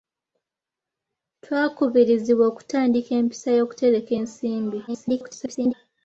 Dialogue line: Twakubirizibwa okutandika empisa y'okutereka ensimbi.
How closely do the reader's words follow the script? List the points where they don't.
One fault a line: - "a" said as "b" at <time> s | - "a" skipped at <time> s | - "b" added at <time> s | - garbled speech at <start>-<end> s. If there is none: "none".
- garbled speech at 4.9-5.7 s